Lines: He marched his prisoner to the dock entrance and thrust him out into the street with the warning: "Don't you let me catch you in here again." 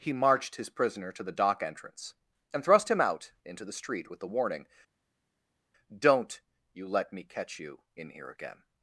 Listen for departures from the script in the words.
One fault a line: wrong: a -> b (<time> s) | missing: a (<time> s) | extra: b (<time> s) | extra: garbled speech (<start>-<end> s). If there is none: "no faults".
no faults